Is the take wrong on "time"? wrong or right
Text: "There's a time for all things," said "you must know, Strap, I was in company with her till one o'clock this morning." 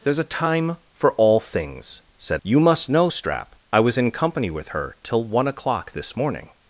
right